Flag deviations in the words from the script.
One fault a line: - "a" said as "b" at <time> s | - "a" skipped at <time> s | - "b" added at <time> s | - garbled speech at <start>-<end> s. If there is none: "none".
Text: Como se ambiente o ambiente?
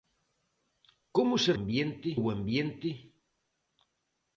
none